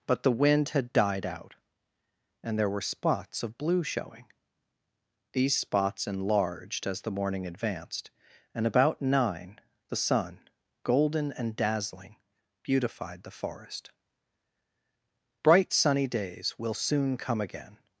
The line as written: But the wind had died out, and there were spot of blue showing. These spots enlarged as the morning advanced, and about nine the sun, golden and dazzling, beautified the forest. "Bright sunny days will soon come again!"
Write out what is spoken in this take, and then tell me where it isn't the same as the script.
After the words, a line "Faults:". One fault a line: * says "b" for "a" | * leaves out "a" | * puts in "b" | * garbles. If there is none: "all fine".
But the wind had died out, and there were spots of blue showing. These spots enlarged as the morning advanced, and about nine the sun, golden and dazzling, beautified the forest. "Bright sunny days will soon come again!"
Faults:
* says "spots" for "spot"